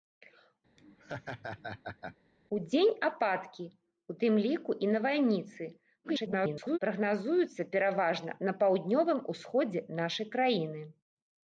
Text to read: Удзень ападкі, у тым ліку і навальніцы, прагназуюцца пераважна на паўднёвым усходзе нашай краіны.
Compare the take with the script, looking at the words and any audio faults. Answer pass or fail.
fail